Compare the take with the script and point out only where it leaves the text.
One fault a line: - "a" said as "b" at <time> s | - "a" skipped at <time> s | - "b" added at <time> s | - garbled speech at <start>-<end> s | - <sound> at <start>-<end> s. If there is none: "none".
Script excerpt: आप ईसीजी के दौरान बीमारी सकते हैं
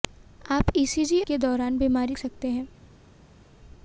none